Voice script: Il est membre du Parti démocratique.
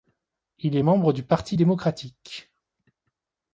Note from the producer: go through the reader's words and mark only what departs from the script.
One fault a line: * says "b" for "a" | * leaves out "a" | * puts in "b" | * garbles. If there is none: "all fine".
all fine